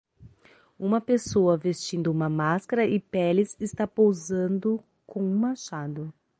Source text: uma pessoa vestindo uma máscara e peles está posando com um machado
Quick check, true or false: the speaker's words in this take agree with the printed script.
true